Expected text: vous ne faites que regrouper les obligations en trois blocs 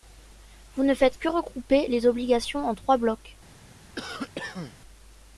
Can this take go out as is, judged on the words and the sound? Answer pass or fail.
fail